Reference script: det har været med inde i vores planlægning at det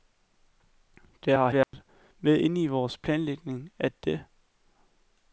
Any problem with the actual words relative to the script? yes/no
no